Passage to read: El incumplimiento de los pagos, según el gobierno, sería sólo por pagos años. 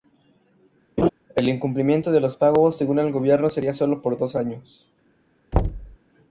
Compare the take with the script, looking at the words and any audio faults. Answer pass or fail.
fail